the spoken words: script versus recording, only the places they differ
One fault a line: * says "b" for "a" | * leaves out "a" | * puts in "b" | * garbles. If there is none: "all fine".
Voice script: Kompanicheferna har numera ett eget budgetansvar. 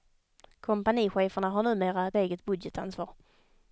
all fine